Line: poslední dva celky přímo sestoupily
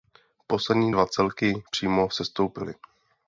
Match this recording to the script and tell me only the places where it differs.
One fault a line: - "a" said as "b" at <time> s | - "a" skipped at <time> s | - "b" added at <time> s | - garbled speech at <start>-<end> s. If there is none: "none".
none